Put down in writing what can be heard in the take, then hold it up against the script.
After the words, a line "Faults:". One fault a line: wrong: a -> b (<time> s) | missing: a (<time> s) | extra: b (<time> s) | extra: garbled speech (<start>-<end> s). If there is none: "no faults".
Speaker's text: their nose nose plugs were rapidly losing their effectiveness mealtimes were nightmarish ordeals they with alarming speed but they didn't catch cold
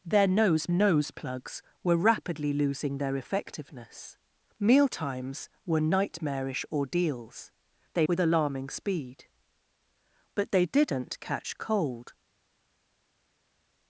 their nose nose plugs were rapidly losing their effectiveness mealtimes were nightmarish ordeals they with alarming speed but they didn't catch cold
Faults:
no faults